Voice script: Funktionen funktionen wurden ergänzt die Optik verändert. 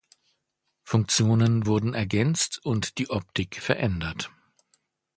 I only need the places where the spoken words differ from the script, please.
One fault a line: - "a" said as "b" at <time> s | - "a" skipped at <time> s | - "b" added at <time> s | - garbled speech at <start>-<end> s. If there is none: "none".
- "funktionen" skipped at 1.7 s
- "und" added at 2.6 s